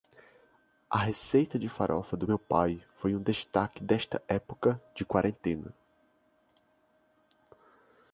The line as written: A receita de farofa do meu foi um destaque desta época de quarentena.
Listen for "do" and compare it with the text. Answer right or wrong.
right